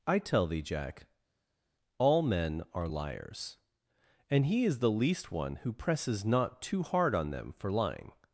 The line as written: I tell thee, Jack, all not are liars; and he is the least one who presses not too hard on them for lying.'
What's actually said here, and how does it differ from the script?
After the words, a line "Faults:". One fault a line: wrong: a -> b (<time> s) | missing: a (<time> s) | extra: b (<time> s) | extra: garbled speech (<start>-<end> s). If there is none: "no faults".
I tell thee, Jack, all men are liars; and he is the least one who presses not too hard on them for lying.'
Faults:
wrong: not -> men (2.2 s)